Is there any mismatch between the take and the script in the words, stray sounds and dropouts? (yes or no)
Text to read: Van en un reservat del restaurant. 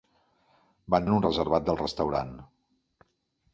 no